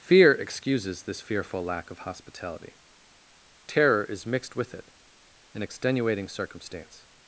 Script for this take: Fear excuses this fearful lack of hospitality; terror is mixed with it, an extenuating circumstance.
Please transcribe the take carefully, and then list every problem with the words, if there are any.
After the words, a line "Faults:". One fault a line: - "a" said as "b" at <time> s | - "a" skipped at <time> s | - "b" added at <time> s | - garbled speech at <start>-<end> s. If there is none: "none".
Fear excuses this fearful lack of hospitality; terror is mixed with it, an extenuating circumstance.
Faults:
none